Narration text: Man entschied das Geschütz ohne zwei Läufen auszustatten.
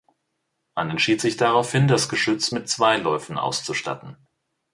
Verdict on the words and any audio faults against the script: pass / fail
fail